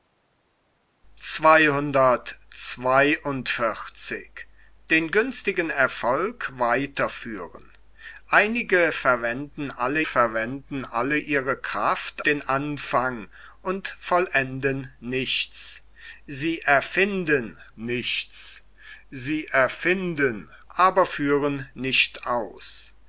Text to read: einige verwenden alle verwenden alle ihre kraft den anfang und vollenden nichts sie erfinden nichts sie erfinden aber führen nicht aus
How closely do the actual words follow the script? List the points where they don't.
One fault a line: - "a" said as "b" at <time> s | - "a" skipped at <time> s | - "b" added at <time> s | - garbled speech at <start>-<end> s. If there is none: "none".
none